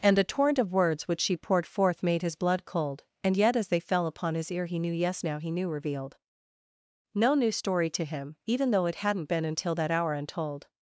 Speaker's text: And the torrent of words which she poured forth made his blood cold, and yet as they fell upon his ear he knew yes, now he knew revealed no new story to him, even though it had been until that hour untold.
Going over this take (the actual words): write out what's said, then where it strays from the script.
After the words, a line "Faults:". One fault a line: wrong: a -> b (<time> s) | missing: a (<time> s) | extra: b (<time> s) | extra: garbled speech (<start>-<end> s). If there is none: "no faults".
And the torrent of words which she poured forth made his blood cold, and yet as they fell upon his ear he knew yes, now he knew revealed no new story to him, even though it hadn't been until that hour untold.
Faults:
wrong: had -> hadn't (8.9 s)